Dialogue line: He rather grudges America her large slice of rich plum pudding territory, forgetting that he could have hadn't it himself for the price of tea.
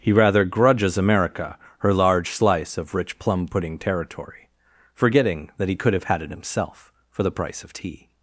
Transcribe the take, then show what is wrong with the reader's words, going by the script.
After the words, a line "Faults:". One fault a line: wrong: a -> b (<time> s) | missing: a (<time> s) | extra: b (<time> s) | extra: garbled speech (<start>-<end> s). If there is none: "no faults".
He rather grudges America her large slice of rich plum pudding territory, forgetting that he could have had it himself for the price of tea.
Faults:
wrong: hadn't -> had (6.0 s)